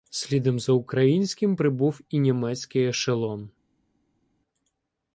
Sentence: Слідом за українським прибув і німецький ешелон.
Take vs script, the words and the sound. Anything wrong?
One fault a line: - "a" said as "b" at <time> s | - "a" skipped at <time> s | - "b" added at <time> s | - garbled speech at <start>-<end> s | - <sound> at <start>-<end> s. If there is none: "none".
none